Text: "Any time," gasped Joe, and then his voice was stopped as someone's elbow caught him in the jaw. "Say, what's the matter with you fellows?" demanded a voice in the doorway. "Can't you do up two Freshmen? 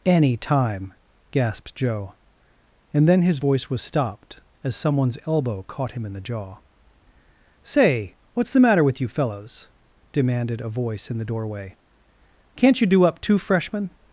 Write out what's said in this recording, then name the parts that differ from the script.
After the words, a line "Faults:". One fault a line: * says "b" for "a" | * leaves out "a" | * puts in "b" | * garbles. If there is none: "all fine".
"Any time," gasped Joe, and then his voice was stopped as someone's elbow caught him in the jaw. "Say, what's the matter with you fellows?" demanded a voice in the doorway. "Can't you do up two Freshmen?
Faults:
all fine